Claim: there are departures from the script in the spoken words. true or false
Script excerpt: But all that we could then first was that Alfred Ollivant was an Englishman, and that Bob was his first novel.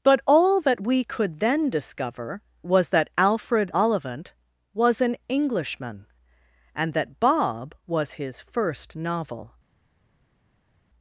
true